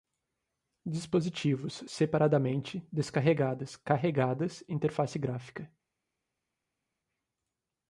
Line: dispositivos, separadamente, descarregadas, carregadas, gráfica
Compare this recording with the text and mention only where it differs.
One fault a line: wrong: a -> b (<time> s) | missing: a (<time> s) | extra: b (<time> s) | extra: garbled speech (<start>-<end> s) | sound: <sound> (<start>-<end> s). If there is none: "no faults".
extra: interface (4.7 s)